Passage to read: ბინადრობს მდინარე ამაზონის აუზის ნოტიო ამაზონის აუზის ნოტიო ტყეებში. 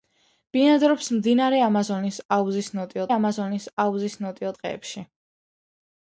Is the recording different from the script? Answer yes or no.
no